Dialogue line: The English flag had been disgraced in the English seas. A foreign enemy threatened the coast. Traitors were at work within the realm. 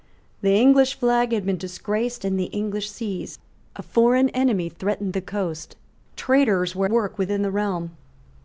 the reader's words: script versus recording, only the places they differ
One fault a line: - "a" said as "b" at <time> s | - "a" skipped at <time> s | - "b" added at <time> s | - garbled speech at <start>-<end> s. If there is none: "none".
- "at" skipped at 6.9 s